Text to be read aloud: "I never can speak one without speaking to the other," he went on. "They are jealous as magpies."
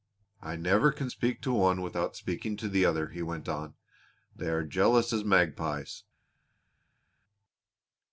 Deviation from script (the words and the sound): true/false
true